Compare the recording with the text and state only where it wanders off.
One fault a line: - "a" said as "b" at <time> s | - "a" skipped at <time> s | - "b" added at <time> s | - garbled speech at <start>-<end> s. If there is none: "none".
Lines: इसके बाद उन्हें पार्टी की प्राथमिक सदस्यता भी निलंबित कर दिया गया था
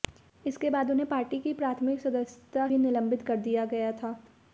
none